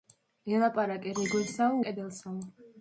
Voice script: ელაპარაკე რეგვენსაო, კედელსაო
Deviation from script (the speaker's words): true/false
false